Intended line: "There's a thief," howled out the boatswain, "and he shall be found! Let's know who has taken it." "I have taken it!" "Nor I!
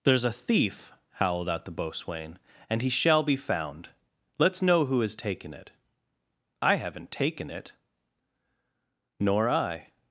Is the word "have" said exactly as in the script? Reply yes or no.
no